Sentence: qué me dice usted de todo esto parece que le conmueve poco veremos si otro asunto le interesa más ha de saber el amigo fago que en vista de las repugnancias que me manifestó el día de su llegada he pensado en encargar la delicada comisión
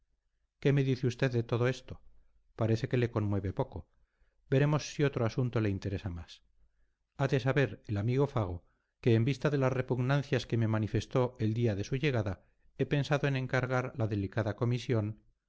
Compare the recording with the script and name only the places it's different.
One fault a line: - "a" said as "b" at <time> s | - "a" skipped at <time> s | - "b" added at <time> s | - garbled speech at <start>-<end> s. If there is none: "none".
none